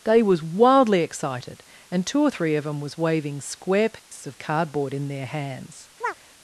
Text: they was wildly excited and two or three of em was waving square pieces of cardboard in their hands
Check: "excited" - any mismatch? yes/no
no